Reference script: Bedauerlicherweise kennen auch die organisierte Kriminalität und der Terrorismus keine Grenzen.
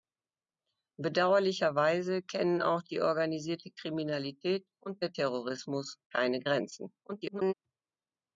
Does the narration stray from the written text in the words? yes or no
yes